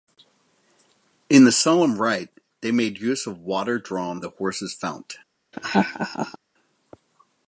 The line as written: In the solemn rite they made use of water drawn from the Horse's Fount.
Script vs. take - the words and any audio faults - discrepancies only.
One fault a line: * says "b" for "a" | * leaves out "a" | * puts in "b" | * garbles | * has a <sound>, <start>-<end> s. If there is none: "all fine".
* leaves out "from"
* has a laugh, 5.5-6.4 s